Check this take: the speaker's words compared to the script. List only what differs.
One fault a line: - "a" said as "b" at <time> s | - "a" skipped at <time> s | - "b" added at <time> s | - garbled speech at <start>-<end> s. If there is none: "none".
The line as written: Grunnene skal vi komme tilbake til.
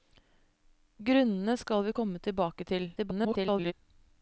- garbled speech at 3.0-3.7 s